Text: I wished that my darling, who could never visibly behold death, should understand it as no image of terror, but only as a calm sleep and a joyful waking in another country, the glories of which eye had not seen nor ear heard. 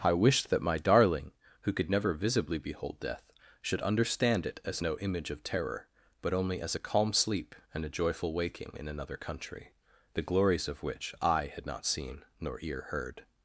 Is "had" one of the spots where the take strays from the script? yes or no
no